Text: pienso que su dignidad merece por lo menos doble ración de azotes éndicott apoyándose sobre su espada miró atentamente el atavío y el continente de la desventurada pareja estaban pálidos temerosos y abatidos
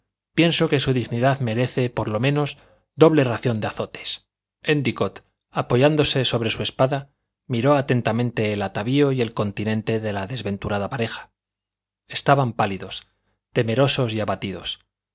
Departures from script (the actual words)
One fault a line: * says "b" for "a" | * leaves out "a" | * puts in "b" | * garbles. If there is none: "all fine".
all fine